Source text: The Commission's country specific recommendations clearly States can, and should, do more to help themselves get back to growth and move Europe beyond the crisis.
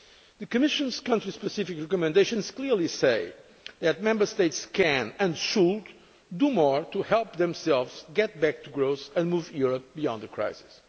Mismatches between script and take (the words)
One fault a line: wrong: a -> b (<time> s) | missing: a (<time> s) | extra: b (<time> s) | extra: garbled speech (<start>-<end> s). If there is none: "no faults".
extra: say that Member (2.9 s)